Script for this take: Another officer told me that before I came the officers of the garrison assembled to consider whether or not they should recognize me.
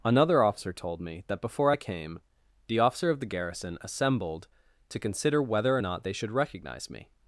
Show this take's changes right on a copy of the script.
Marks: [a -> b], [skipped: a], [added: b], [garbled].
Another officer told me that before I came the [officers -> officer] of the garrison assembled to consider whether or not they should recognize me.